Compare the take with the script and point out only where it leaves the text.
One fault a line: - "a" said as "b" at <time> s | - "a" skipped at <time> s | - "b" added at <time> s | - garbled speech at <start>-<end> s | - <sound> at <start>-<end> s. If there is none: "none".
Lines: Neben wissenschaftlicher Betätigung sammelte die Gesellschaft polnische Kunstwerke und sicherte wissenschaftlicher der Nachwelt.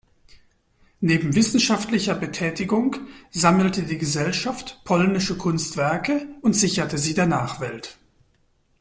- "wissenschaftlicher" said as "sie" at 7.0 s